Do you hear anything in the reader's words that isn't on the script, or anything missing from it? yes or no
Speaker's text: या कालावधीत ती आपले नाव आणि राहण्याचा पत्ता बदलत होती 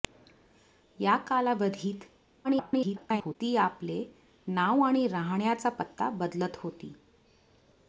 yes